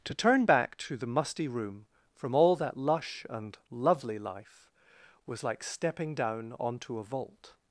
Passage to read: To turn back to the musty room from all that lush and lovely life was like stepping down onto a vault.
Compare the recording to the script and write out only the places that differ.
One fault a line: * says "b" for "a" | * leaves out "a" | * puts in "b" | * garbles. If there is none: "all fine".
all fine